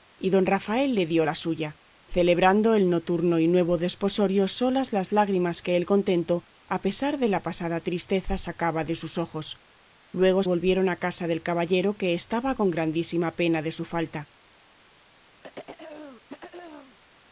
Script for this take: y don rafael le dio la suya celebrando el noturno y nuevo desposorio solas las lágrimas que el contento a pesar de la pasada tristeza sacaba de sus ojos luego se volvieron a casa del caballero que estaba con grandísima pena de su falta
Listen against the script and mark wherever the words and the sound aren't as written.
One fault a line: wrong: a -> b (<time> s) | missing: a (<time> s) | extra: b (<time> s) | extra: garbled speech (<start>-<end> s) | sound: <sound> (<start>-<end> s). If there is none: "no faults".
missing: se (10.4 s)
sound: throat clearing (15.4-17.0 s)